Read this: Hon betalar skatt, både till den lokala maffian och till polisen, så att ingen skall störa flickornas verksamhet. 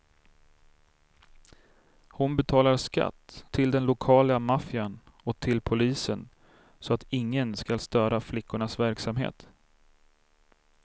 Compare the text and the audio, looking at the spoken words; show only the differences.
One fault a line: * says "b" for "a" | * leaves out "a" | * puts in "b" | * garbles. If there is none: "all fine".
* leaves out "både"